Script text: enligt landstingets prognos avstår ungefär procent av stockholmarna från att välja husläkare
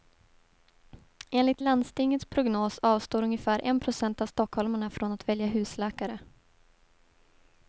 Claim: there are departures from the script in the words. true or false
true